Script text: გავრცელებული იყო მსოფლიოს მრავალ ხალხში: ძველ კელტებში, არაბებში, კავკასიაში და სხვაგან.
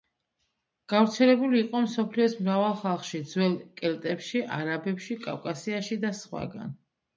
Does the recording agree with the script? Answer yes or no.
yes